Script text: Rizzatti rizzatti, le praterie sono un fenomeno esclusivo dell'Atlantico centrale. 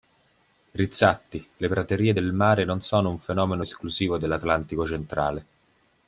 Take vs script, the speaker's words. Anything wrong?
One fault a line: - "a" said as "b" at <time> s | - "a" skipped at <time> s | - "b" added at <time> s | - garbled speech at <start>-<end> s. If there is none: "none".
- "rizzatti" skipped at 1.5 s
- "del mare non" added at 2.1 s